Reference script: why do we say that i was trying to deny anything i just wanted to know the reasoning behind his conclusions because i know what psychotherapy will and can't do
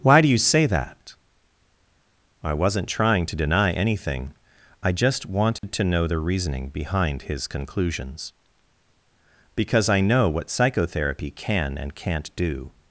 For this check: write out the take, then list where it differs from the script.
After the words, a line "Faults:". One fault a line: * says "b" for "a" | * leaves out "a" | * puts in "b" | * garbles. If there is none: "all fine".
why do you say that i wasn't trying to deny anything i just wanted to know the reasoning behind his conclusions because i know what psychotherapy can and can't do
Faults:
* says "you" for "we"
* says "wasn't" for "was"
* says "can" for "will"